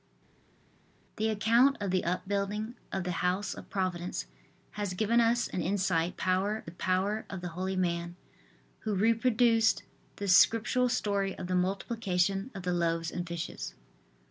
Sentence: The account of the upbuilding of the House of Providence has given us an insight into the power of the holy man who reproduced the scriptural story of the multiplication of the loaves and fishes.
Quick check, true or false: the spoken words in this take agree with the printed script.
false